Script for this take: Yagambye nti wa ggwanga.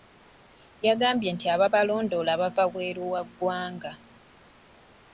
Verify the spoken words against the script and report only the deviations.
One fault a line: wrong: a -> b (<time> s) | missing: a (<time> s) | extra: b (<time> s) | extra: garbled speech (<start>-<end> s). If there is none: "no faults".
extra: ababalondoola bava wabweru (1.6 s)